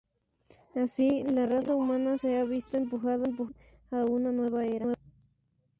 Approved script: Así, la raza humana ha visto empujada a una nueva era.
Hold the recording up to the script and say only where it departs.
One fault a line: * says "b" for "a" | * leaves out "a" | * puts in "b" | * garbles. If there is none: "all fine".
* puts in "se"